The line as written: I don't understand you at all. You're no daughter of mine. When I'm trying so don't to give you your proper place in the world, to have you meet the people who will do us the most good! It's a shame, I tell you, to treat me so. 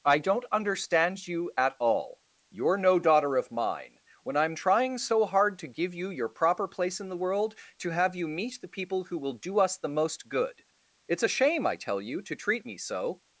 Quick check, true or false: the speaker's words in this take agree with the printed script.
false